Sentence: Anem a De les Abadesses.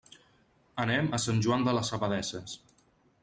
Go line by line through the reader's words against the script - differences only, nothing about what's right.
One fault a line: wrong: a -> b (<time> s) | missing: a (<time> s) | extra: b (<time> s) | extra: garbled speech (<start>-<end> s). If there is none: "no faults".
extra: Sant Joan (1.2 s)